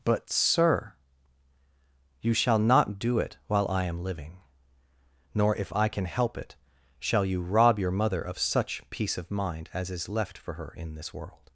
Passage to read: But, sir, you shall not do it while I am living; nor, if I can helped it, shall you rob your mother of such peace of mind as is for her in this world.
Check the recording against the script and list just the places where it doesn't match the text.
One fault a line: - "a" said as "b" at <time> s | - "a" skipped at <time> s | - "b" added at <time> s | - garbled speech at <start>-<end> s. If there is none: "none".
- "helped" said as "help" at 6.0 s
- "left" added at 10.1 s